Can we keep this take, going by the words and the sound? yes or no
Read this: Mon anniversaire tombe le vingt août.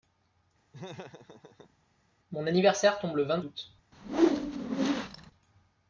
no